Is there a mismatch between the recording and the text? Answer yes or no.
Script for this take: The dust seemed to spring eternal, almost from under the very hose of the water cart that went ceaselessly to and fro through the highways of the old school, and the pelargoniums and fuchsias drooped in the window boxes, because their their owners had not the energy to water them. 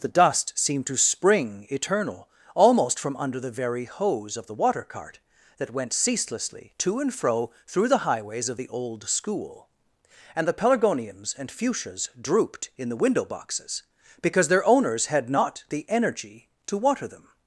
yes